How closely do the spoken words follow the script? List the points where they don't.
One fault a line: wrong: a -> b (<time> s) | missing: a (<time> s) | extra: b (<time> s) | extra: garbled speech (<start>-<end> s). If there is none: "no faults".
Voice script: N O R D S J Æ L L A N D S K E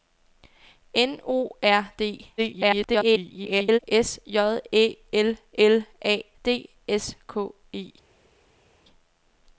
extra: garbled speech (2.4-3.8 s)
missing: N (6.2 s)